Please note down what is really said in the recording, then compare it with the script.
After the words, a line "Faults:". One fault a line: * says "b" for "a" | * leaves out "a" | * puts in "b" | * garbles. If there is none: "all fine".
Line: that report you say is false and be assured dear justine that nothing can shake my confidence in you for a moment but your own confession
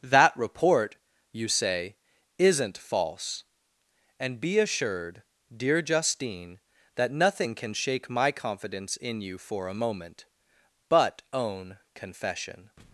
that report you say isn't false and be assured dear justine that nothing can shake my confidence in you for a moment but own confession
Faults:
* says "isn't" for "is"
* leaves out "your"